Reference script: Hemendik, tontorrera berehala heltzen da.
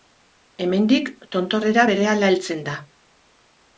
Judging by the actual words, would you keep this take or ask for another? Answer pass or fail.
pass